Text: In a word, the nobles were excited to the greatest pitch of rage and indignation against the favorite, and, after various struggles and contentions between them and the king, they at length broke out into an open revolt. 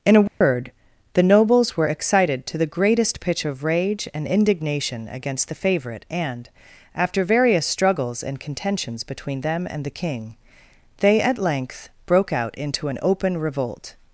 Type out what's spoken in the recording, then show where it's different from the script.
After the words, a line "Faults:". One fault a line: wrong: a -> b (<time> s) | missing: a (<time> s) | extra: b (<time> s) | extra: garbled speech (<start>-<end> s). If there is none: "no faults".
In a word, the nobles were excited to the greatest pitch of rage and indignation against the favorite, and, after various struggles and contentions between them and the king, they at length broke out into an open revolt.
Faults:
no faults